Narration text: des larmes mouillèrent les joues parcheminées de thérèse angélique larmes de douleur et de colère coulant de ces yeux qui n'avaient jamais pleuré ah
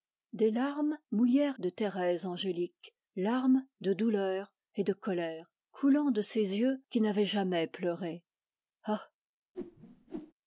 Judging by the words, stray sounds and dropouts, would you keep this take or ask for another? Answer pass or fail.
fail